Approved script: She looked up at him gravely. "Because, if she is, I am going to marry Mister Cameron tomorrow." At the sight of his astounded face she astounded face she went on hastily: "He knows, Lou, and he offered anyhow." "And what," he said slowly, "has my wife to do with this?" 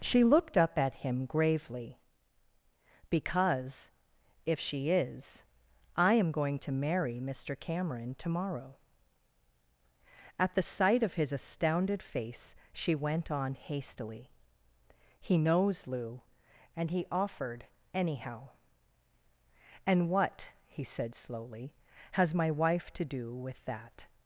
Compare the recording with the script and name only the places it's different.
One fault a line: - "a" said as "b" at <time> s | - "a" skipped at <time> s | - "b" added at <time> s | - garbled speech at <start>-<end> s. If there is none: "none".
- "astounded face she" skipped at 12.9 s
- "this" said as "that" at 23.6 s